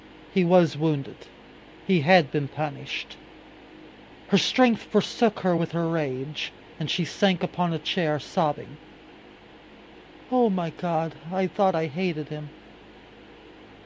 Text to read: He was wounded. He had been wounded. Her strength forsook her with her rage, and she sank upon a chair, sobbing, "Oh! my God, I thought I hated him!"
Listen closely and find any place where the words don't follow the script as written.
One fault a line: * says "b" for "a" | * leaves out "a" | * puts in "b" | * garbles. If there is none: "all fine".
* says "punished" for "wounded"